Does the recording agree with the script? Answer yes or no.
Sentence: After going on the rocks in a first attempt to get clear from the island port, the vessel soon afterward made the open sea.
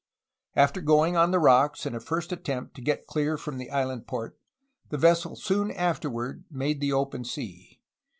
yes